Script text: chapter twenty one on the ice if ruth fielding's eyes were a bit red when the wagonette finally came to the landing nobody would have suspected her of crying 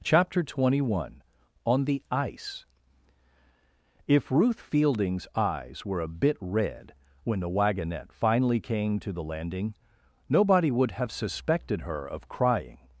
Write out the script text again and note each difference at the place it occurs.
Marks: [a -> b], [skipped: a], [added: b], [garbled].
chapter twenty one on the ice if ruth fielding's eyes were a bit red when the wagonette finally came to the landing nobody would have suspected her of crying